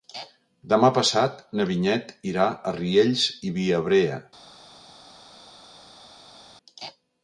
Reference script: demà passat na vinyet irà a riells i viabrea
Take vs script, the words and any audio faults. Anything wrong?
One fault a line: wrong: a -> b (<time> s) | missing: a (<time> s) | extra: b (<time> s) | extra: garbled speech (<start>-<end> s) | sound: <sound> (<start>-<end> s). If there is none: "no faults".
no faults